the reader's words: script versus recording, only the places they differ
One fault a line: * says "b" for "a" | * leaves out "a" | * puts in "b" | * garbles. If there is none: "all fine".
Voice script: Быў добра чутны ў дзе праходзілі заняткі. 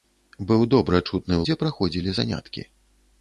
all fine